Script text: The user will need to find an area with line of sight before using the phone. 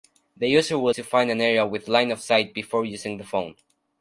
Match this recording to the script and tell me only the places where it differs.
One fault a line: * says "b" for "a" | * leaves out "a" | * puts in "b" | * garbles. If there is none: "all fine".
* leaves out "need"